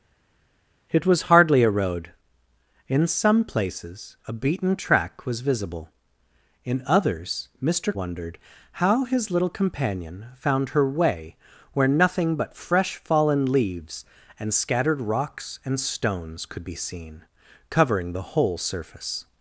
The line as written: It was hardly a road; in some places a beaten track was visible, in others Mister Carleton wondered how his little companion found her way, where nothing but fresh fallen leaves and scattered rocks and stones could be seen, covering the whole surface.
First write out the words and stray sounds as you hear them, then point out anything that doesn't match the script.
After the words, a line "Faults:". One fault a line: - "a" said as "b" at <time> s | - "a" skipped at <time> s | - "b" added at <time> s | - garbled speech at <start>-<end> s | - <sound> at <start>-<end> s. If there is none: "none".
It was hardly a road; in some places a beaten track was visible, in others Mister Wondered how his little companion found her way, where nothing but fresh fallen leaves and scattered rocks and stones could be seen, covering the whole surface.
Faults:
- "Carleton" skipped at 7.9 s